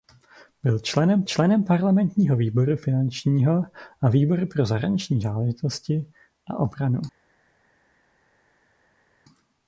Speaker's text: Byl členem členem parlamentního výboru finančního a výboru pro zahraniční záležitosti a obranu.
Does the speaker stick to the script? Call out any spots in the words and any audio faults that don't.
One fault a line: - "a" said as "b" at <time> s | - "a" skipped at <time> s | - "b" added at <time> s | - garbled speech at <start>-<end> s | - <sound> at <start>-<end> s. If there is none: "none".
none